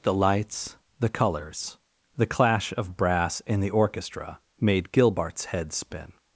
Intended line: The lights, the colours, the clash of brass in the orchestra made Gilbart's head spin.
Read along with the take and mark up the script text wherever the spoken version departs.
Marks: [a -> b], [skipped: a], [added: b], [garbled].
The lights, the colours, the clash of brass in the orchestra made Gilbart's head spin.